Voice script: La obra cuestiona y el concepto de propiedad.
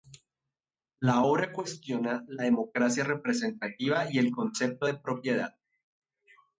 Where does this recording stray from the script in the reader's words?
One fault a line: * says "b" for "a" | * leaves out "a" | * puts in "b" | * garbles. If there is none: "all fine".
* puts in "la democracia representativa"